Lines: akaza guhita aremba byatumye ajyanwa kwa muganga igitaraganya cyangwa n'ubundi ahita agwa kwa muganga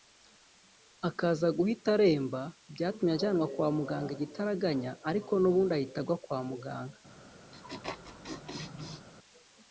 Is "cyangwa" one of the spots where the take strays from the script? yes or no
yes